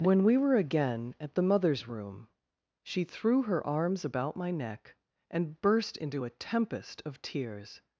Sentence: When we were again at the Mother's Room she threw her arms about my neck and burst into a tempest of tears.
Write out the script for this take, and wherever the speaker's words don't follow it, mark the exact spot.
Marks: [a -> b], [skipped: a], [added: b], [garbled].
When we were again at the Mother's Room she threw her arms about my neck and burst into a tempest of tears.